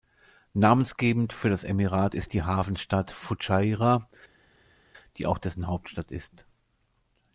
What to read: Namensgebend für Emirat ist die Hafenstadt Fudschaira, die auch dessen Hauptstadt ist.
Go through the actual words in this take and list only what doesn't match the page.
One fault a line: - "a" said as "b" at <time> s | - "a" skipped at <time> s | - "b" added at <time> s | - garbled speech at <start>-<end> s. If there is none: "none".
- "das" added at 1.5 s